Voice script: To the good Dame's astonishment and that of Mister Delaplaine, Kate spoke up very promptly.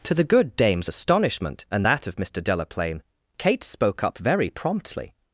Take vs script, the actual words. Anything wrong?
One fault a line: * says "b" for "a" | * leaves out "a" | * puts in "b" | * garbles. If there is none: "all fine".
all fine